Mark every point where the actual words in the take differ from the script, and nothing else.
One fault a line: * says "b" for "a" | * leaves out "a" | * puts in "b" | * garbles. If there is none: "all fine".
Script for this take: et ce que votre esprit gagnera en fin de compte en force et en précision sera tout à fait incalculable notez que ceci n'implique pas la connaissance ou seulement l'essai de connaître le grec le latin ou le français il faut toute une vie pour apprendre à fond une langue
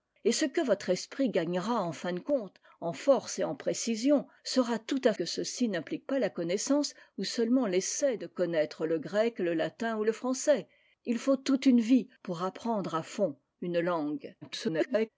* leaves out "fait incalculable notez"
* garbles